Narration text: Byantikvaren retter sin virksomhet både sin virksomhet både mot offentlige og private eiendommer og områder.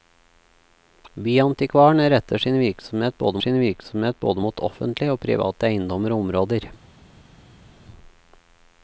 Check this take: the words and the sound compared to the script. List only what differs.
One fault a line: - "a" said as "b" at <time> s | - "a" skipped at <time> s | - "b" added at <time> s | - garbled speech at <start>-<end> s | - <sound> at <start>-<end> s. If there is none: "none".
none